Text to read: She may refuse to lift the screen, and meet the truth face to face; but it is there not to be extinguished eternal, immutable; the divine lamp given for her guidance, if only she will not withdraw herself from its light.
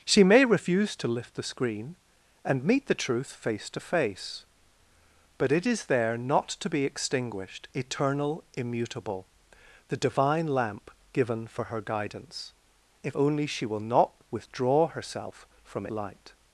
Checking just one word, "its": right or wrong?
wrong